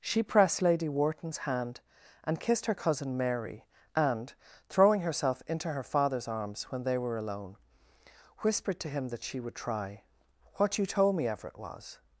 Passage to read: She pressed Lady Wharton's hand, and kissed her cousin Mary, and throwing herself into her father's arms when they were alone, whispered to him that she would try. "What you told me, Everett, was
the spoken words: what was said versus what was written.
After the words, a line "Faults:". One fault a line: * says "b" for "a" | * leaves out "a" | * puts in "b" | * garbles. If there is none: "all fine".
She pressed Lady Wharton's hand, and kissed her cousin Mary, and throwing herself into her father's arms when they were alone, whispered to him that she would try. "What you told me, Everett, was
Faults:
all fine